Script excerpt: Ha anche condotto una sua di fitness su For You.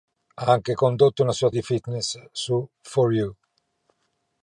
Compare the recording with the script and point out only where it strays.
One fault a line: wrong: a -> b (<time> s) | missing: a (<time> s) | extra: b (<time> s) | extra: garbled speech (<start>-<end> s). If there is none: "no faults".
no faults